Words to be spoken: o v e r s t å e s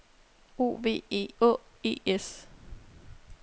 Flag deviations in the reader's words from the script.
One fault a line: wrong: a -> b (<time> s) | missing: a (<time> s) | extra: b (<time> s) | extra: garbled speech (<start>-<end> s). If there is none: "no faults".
missing: r s t (1.3 s)